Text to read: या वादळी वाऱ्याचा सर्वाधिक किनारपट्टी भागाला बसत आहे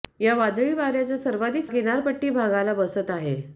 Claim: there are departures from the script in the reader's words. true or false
false